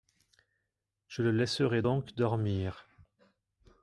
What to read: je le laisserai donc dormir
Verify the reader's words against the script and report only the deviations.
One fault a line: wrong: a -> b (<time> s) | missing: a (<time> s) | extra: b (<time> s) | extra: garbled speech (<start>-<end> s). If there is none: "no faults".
no faults